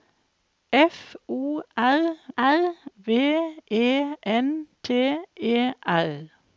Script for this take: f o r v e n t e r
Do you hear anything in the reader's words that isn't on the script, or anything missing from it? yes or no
yes